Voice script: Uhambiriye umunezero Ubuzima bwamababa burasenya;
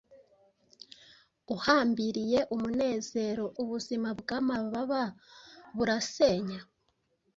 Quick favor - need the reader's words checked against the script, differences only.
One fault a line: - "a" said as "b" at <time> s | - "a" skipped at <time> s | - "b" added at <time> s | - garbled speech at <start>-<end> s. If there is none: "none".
none